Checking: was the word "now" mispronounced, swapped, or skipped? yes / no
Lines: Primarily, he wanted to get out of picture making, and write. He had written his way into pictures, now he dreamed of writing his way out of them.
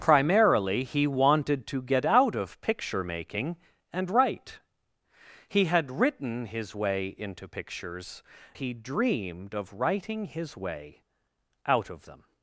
yes